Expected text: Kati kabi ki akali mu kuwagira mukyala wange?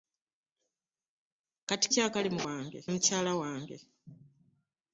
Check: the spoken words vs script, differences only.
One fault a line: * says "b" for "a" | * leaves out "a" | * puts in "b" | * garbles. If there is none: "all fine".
* leaves out "kabi"
* says "wange" for "kuwagira"